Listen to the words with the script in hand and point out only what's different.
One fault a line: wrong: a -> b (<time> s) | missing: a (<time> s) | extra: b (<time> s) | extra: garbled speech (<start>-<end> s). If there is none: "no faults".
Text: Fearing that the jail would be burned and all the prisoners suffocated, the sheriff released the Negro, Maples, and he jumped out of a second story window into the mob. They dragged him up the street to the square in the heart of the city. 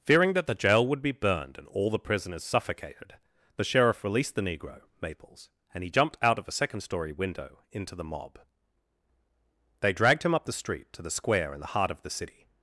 no faults